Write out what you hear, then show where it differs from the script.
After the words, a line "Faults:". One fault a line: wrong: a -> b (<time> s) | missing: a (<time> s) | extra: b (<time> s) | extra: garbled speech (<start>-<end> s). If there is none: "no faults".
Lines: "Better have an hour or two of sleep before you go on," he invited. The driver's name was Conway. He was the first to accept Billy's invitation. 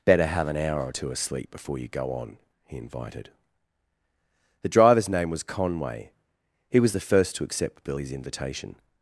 "Better have an hour or two of sleep before you go on," he invited. The driver's name was Conway. He was the first to accept Billy's invitation.
Faults:
no faults